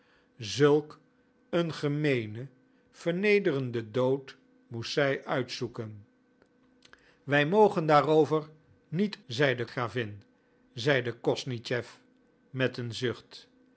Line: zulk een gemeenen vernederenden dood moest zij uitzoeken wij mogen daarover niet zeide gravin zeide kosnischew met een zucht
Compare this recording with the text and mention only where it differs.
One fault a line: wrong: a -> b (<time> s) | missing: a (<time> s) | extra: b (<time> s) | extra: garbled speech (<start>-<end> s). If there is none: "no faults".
no faults